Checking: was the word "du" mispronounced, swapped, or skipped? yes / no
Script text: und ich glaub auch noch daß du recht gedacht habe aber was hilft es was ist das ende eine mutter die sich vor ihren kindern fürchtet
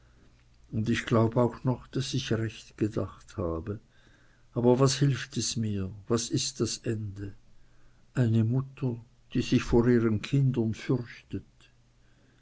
yes